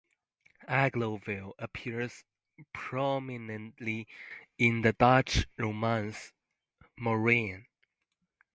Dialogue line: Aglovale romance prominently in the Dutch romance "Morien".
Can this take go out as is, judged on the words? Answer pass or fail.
fail